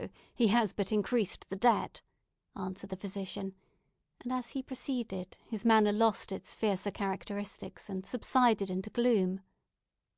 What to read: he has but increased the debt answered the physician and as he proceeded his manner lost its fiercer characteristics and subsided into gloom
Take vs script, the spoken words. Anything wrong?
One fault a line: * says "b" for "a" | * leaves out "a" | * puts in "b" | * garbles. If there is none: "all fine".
all fine